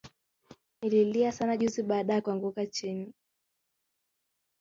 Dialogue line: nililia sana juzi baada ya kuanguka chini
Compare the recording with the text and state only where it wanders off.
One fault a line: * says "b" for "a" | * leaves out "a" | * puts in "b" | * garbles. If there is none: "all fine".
all fine